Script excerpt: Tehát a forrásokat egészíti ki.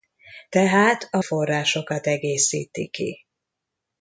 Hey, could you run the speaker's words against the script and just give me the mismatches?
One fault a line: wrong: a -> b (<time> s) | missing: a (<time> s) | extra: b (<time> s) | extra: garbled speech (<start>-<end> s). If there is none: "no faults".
no faults